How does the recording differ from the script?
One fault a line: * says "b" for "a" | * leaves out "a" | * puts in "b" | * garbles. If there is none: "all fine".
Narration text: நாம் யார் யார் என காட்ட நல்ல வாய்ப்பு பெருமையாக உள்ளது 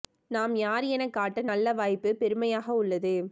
* leaves out "யார்"